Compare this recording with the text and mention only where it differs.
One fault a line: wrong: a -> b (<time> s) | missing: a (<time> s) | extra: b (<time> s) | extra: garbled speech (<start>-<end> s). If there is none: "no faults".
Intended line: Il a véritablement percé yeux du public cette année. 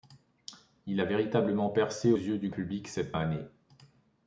no faults